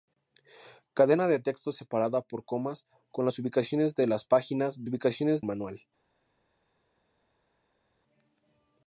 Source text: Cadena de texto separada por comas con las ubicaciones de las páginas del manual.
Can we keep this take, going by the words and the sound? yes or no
no